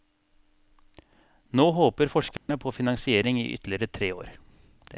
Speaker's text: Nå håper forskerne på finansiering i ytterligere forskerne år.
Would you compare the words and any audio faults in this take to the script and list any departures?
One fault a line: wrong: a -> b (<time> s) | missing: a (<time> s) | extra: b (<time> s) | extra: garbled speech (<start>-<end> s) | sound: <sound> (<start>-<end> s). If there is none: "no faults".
sound: dropout (2.4-2.5 s)
wrong: forskerne -> tre (3.9 s)